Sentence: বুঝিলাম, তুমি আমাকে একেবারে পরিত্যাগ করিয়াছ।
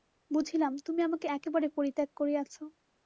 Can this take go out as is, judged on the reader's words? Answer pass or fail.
pass